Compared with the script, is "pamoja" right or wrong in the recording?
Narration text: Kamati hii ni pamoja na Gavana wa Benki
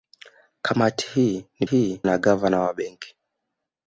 wrong